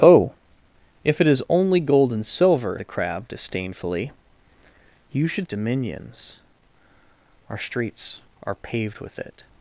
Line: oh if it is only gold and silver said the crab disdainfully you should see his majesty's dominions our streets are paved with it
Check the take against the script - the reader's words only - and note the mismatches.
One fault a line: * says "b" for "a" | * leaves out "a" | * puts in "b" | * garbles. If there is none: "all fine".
* leaves out "said"
* leaves out "see his majesty's"